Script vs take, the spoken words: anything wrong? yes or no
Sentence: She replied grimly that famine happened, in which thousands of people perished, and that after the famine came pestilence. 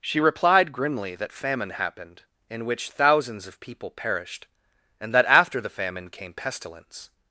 no